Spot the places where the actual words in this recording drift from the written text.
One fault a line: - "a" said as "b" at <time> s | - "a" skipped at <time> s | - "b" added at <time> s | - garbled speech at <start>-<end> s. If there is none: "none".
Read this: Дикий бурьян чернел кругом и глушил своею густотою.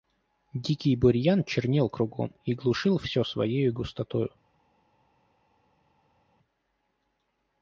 - "всё" added at 3.0 s